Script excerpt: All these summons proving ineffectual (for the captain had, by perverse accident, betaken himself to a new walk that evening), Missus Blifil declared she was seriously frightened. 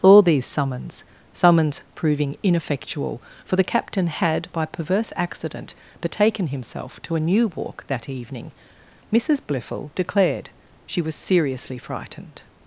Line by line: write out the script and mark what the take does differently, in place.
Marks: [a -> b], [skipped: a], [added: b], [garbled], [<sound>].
All these summons [added: summons] proving ineffectual (for the captain had, by perverse accident, betaken himself to a new walk that evening), Missus Blifil declared she was seriously frightened.